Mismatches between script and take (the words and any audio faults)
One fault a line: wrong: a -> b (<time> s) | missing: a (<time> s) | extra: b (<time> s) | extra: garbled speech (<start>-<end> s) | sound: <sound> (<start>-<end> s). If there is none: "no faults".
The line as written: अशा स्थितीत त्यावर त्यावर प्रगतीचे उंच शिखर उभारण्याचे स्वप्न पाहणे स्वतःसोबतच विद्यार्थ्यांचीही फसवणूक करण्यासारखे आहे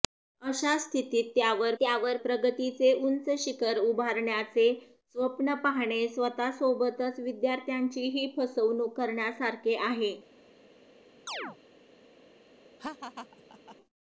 sound: chirp (11.3-11.6 s)
sound: laugh (12.8-13.8 s)